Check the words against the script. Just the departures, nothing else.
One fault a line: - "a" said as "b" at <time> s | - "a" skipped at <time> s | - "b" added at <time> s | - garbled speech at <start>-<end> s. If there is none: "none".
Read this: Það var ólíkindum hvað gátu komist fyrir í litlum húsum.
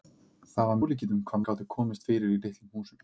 none